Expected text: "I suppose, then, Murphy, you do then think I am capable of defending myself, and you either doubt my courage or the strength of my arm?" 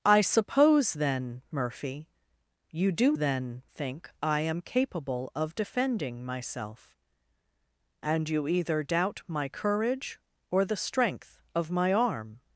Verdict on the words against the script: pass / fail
pass